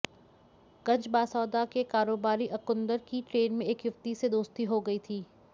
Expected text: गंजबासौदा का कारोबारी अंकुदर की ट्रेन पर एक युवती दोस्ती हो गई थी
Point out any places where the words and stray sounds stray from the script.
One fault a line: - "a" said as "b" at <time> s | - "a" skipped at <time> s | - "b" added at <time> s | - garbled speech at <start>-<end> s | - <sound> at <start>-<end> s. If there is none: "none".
- "का" said as "के" at 1.7 s
- "पर" said as "में" at 3.5 s
- "से" added at 4.2 s